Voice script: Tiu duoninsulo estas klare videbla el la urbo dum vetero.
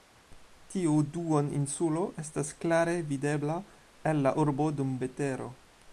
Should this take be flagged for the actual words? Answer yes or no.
no